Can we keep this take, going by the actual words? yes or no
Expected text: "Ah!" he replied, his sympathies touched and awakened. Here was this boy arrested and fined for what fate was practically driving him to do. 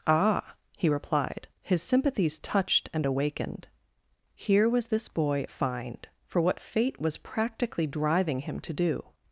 no